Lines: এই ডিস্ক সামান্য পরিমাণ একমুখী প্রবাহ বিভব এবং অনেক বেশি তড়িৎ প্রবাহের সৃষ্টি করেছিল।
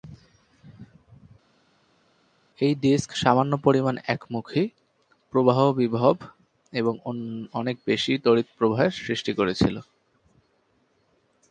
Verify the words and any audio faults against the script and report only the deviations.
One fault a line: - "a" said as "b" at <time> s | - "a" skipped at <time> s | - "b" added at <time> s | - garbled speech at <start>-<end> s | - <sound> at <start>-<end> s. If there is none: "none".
none